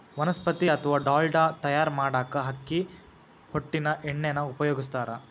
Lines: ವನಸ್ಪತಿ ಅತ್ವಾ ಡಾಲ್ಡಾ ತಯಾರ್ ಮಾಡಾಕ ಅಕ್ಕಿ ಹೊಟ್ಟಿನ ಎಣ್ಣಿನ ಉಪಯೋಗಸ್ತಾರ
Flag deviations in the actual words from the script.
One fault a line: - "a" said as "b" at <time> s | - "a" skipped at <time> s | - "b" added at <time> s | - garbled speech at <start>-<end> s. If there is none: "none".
none